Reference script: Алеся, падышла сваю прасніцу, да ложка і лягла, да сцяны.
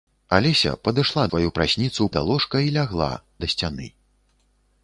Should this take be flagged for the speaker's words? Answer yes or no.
no